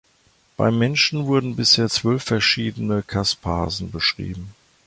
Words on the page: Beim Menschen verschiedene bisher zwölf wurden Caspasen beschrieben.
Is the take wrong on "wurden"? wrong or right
wrong